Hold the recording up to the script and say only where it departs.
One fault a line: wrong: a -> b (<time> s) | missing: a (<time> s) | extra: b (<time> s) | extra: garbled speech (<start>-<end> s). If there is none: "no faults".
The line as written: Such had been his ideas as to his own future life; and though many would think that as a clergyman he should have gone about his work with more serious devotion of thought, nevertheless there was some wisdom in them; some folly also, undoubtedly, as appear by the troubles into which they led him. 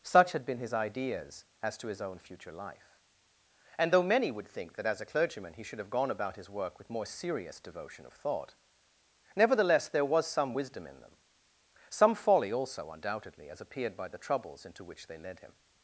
wrong: appear -> appeared (13.6 s)